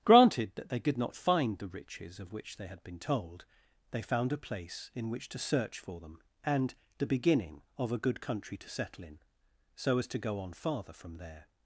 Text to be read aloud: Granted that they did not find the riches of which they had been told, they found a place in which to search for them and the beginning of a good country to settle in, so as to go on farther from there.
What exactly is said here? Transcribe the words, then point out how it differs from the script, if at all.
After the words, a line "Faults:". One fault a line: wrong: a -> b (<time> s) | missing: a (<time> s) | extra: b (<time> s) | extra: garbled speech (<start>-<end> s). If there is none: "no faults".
Granted that they could not find the riches of which they had been told, they found a place in which to search for them and the beginning of a good country to settle in, so as to go on farther from there.
Faults:
wrong: did -> could (0.8 s)